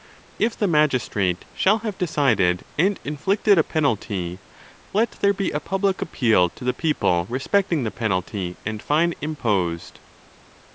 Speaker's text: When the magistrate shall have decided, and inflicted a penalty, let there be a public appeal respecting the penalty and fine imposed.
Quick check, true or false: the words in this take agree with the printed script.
false